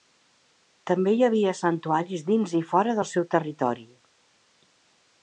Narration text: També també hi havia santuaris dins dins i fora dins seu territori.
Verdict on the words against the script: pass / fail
fail